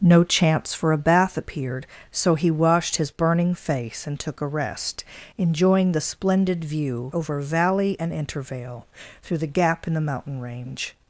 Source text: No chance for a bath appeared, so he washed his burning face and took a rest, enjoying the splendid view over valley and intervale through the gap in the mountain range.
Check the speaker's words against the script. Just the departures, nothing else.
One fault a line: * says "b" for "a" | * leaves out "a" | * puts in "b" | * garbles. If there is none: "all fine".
all fine